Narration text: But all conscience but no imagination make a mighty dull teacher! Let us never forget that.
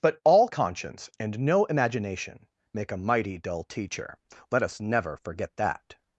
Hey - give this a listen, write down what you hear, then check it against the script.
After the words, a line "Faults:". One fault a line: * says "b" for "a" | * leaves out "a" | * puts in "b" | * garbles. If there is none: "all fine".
But all conscience and no imagination make a mighty dull teacher! Let us never forget that.
Faults:
* says "and" for "but"